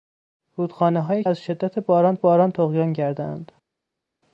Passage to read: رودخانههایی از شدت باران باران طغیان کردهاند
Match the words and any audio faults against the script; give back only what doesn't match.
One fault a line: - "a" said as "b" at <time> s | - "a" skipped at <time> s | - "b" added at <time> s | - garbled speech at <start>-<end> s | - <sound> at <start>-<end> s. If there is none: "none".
none